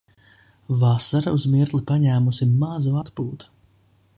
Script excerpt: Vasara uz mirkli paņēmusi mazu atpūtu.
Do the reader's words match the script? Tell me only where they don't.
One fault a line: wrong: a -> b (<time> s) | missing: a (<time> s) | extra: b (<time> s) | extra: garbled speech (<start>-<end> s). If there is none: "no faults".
no faults